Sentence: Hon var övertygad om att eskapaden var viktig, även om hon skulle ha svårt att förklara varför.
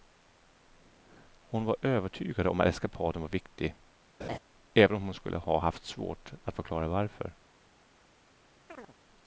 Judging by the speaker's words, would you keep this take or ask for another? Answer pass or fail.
fail